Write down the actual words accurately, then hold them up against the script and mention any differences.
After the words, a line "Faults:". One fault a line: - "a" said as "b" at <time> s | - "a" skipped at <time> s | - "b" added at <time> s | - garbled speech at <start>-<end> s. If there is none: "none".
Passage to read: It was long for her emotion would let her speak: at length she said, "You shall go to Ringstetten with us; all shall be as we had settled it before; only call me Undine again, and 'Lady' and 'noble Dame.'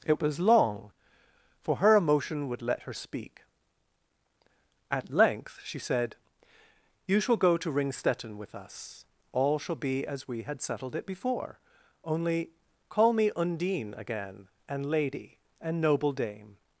It was long for her emotion would let her speak: at length she said, "You shall go to Ringstetten with us; all shall be as we had settled it before; only call me Undine again, and 'Lady' and 'noble Dame.'
Faults:
none